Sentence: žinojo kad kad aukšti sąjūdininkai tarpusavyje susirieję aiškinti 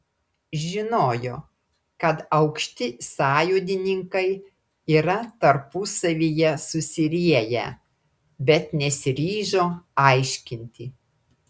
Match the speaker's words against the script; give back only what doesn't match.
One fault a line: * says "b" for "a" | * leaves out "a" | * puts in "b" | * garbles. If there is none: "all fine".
* leaves out "kad"
* puts in "yra"
* puts in "bet nesiryžo"